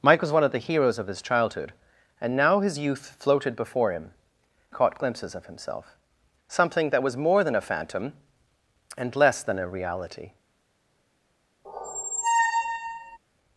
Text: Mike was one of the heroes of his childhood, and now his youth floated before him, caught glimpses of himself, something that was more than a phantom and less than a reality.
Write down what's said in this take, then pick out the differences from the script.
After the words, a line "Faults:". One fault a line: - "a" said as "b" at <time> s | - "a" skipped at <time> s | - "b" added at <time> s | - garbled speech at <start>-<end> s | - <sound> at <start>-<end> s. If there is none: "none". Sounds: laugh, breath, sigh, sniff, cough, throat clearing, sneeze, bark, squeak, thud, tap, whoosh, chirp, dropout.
Mike was one of the heroes of his childhood, and now his youth floated before him, caught glimpses of himself, something that was more than a phantom and less than a reality.
Faults:
- squeak at 11.6-13.2 s